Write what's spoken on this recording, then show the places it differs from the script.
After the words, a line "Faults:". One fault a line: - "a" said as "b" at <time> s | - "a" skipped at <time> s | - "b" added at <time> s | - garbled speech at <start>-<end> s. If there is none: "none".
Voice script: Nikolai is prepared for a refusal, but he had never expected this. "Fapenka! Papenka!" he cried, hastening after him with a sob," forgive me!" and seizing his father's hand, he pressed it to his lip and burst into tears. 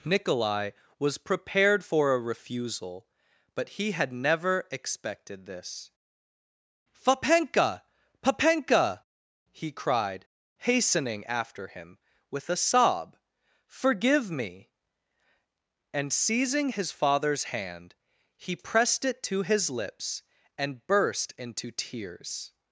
Nikolai was prepared for a refusal, but he had never expected this. "Fapenka! Papenka!" he cried, hastening after him with a sob," forgive me!" and seizing his father's hand, he pressed it to his lips and burst into tears.
Faults:
- "is" said as "was" at 1.0 s
- "lip" said as "lips" at 19.7 s